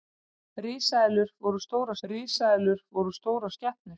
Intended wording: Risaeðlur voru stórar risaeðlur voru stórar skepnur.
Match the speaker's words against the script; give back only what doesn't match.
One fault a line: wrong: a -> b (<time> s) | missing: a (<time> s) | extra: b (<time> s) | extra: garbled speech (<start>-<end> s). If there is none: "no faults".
no faults